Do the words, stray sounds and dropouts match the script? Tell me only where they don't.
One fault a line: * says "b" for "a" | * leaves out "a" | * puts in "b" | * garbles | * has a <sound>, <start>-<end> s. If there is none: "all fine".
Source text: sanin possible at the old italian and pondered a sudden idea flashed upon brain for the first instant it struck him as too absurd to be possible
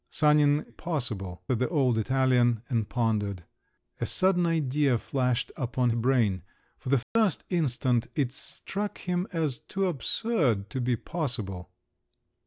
* has a dropout, 7.0-7.2 s